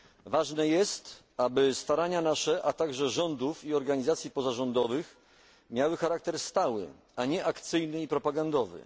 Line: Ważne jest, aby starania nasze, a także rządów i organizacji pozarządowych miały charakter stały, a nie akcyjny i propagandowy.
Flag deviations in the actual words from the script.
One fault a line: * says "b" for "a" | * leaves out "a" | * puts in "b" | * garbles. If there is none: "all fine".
all fine